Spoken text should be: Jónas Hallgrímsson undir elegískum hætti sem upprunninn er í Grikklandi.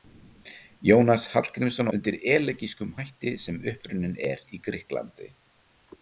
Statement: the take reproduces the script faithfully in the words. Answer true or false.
true